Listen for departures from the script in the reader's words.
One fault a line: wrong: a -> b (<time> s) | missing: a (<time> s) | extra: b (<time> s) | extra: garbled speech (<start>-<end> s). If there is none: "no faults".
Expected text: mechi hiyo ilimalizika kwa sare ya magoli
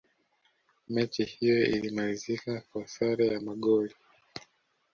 no faults